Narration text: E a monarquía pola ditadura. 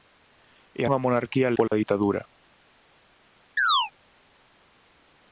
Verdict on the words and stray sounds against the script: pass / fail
fail